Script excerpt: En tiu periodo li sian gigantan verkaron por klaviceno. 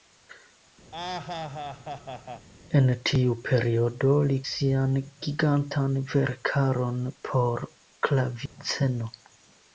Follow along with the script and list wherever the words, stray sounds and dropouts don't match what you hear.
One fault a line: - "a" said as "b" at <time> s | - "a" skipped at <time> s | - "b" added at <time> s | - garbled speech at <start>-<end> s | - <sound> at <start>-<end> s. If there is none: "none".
- laugh at 0.9-2.5 s
- dropout at 8.5-8.6 s